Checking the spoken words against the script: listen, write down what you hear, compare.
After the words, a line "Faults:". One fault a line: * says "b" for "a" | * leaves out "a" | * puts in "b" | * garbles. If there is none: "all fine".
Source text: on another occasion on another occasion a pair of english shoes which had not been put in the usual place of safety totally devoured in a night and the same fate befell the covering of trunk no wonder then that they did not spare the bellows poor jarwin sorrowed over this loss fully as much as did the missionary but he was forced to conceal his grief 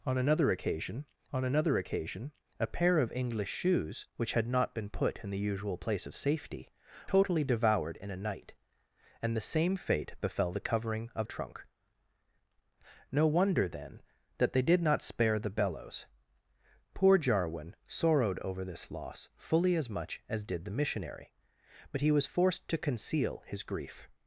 on another occasion on another occasion a pair of english shoes which had not been put in the usual place of safety totally devoured in a night and the same fate befell the covering of trunk no wonder then that they did not spare the bellows poor jarwin sorrowed over this loss fully as much as did the missionary but he was forced to conceal his grief
Faults:
all fine